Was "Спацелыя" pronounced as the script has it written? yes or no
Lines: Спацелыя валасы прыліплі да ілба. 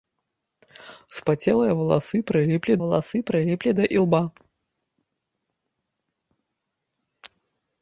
yes